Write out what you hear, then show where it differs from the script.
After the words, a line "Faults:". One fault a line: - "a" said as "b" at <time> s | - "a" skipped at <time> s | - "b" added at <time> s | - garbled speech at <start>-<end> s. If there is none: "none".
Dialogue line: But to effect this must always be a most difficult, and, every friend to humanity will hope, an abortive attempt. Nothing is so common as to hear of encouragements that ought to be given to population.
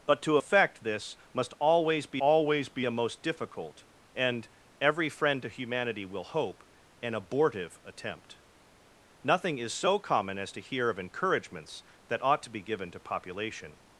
But to effect this must always be always be a most difficult, and, every friend to humanity will hope, an abortive attempt. Nothing is so common as to hear of encouragements that ought to be given to population.
Faults:
- "always be" added at 2.2 s